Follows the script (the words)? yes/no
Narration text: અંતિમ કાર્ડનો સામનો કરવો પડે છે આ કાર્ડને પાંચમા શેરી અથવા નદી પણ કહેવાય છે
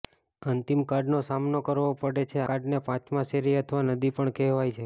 no